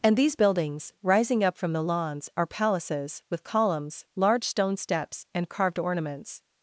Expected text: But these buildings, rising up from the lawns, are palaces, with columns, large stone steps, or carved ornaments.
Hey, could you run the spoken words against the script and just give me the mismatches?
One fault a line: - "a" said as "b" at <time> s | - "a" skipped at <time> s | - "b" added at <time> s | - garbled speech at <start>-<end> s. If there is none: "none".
- "But" said as "And" at 0.0 s
- "or" said as "and" at 5.3 s